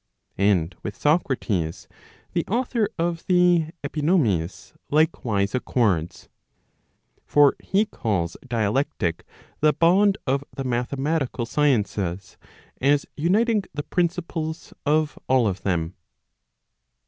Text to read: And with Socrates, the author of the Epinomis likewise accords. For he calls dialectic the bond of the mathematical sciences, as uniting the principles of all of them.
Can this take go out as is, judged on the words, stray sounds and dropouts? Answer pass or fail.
pass